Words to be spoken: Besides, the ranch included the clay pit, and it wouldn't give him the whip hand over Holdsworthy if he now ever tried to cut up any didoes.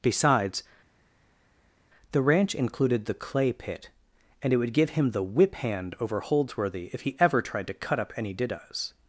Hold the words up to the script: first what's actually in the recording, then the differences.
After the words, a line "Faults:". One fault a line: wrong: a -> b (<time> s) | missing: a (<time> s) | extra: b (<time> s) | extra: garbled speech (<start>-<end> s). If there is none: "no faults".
Besides, the ranch included the clay pit, and it would give him the whip hand over Holdsworthy if he ever tried to cut up any didoes.
Faults:
wrong: wouldn't -> would (4.6 s)
missing: now (7.2 s)